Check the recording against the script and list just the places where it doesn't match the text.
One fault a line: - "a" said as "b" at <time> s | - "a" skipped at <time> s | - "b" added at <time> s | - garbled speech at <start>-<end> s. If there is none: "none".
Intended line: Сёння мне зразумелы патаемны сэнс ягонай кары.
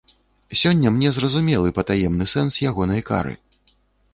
none